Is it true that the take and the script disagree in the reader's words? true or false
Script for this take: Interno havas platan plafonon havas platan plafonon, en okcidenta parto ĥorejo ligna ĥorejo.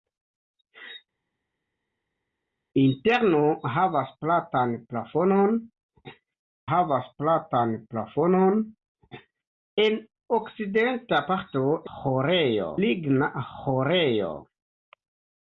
false